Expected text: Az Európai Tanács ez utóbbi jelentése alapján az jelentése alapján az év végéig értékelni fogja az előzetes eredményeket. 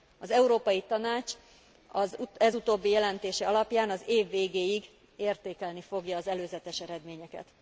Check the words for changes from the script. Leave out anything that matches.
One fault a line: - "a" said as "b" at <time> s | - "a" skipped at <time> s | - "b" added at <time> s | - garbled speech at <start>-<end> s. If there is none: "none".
- "jelentése alapján az" skipped at 4.0 s